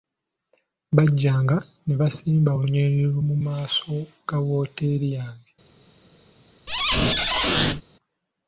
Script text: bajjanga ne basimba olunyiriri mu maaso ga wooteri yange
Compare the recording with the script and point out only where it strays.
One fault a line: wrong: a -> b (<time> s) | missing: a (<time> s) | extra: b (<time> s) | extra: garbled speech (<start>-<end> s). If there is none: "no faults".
no faults